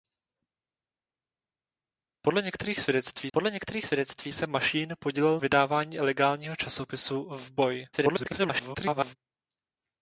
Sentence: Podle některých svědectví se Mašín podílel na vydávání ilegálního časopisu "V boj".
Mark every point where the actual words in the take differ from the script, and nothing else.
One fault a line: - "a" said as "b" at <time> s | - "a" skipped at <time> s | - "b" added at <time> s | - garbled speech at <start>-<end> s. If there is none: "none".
- "podle některých svědectví" added at 3.3 s
- "na" skipped at 5.4 s
- garbled speech at 7.9-9.2 s